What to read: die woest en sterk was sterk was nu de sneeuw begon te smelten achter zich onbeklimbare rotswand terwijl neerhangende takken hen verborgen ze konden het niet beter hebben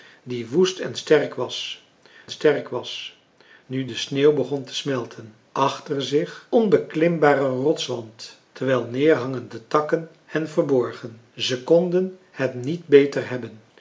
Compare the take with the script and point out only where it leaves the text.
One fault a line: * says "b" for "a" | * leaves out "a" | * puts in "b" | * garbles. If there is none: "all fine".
all fine